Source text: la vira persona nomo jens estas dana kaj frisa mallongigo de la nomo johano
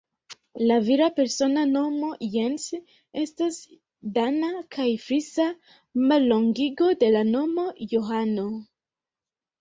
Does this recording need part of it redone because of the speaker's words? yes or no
no